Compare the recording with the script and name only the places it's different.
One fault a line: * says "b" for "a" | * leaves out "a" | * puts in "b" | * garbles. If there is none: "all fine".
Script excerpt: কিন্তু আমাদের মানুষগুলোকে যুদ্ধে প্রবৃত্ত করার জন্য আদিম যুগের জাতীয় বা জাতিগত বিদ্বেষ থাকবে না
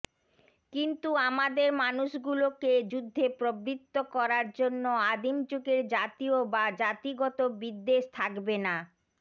all fine